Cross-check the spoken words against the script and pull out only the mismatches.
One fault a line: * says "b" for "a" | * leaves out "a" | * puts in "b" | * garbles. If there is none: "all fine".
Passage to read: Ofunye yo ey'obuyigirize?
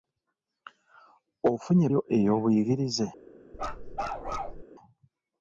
all fine